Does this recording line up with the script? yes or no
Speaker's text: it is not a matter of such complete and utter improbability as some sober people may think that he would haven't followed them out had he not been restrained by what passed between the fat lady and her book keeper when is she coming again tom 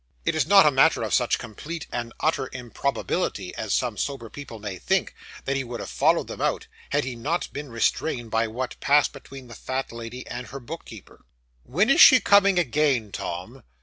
no